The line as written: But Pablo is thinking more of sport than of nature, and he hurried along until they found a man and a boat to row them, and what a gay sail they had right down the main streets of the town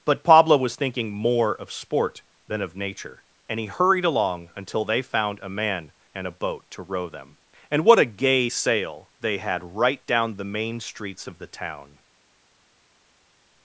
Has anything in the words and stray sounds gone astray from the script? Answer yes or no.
yes